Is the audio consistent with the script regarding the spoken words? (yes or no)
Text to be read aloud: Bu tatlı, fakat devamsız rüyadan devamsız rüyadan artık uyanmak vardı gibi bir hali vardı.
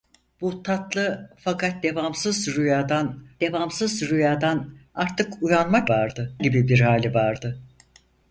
yes